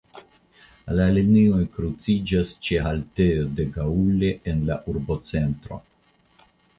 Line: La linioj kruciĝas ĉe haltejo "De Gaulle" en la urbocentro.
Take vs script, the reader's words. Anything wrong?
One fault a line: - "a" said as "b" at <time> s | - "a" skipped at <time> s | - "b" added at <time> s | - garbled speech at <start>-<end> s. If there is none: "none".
none